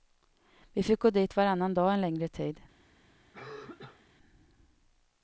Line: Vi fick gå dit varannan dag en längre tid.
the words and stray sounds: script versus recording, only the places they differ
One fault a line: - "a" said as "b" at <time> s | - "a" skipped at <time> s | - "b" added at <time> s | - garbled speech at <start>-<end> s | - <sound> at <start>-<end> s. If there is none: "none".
- cough at 3.3-4.1 s